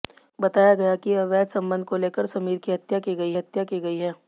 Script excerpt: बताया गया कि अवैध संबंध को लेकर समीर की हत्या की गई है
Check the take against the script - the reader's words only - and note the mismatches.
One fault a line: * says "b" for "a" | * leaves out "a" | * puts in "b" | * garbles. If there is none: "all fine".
* puts in "हत्या की गई"